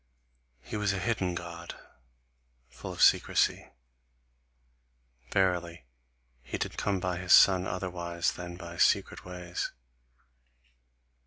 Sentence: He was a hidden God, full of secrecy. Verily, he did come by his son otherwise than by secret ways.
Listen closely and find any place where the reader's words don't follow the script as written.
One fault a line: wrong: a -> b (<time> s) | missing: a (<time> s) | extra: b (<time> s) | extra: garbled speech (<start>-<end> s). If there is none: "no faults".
no faults